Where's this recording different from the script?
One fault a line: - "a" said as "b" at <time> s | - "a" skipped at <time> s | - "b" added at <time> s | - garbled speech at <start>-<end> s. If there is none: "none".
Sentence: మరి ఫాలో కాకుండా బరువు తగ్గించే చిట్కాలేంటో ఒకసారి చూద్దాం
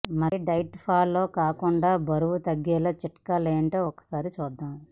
- "డైట్" added at 0.5 s